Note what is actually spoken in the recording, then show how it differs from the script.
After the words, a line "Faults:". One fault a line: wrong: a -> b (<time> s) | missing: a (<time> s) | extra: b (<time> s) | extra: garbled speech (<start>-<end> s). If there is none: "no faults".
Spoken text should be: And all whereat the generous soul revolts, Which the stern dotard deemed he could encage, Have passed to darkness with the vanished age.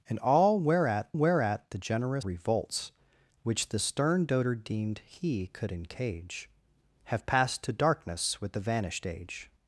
And all whereat whereat the generous revolts, Which the stern dotard deemed he could encage, Have passed to darkness with the vanished age.
Faults:
extra: whereat (1.1 s)
missing: soul (2.2 s)